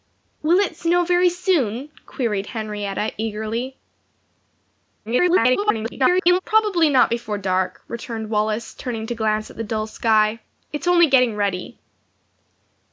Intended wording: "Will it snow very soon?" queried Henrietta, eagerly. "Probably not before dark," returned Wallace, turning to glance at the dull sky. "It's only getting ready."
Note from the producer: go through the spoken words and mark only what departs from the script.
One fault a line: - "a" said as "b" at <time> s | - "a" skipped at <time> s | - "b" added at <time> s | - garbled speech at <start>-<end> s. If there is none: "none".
- garbled speech at 5.1-6.4 s